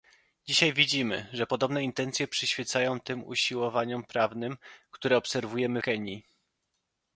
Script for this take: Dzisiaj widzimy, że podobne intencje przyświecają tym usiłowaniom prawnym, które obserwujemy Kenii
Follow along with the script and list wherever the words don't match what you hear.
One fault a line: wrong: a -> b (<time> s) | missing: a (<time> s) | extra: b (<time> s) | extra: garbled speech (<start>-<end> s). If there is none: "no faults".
no faults